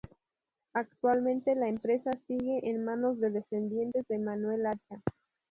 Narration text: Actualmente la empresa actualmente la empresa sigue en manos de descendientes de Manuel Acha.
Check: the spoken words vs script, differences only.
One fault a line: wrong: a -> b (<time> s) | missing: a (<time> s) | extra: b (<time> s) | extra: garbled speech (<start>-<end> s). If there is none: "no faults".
missing: actualmente la empresa (2.1 s)